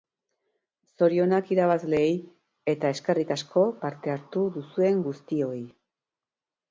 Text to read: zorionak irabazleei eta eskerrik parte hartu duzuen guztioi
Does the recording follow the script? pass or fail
fail